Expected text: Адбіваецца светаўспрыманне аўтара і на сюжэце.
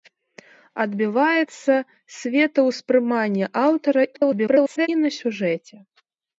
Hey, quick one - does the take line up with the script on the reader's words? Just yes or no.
no